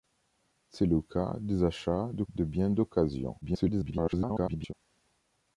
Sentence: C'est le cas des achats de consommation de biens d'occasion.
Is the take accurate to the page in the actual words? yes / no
no